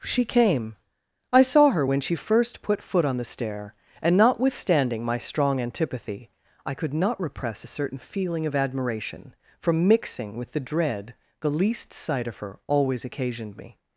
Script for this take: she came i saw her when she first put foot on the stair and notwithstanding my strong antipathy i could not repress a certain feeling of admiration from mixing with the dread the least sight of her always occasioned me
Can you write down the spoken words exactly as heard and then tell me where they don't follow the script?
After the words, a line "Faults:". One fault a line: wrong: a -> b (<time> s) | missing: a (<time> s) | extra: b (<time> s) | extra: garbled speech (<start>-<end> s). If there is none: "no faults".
she came i saw her when she first put foot on the stair and notwithstanding my strong antipathy i could not repress a certain feeling of admiration from mixing with the dread the least sight of her always occasioned me
Faults:
no faults